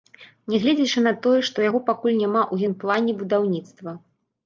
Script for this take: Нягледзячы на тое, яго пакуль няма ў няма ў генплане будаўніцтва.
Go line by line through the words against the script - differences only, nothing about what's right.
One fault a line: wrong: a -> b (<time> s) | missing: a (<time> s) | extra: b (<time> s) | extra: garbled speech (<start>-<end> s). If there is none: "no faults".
extra: што (1.5 s)
missing: няма ў (2.7 s)